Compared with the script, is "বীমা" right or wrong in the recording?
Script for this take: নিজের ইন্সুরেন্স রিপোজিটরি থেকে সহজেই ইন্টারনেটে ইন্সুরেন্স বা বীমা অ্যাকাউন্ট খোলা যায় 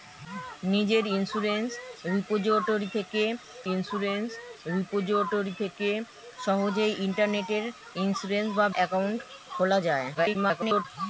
wrong